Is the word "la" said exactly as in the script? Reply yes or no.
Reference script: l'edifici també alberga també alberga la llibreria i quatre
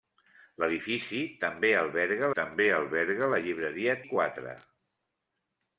yes